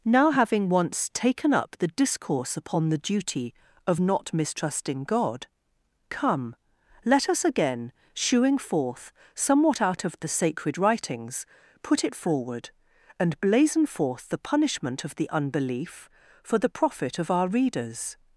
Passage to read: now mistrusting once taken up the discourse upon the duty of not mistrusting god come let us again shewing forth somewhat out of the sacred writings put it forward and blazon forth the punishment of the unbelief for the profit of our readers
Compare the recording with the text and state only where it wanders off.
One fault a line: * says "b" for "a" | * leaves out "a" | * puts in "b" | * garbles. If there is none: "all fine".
* says "having" for "mistrusting"